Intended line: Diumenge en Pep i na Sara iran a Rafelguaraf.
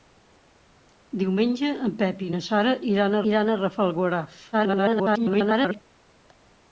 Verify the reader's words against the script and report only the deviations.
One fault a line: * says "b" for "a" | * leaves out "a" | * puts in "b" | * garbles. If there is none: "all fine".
* puts in "iran"
* garbles